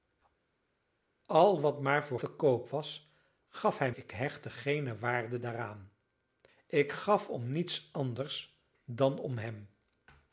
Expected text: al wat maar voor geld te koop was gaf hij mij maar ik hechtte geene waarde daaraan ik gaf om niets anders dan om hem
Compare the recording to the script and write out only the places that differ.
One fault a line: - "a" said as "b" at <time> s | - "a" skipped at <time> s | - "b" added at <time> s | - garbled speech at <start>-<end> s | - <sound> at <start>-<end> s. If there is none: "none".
- "geld" skipped at 2.2 s
- "mij maar" skipped at 3.9 s